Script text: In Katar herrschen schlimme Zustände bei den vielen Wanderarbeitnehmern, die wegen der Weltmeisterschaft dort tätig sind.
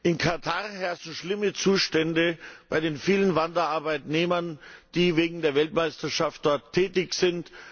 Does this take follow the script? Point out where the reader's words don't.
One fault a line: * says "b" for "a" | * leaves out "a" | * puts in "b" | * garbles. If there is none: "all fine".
all fine